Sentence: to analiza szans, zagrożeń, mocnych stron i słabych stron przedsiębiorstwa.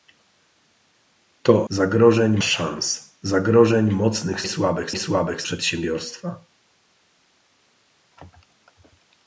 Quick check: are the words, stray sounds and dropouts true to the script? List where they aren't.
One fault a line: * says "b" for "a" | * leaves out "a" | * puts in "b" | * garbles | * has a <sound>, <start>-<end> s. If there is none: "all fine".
* says "zagrożeń" for "analiza"
* says "słabych" for "stron"
* leaves out "stron"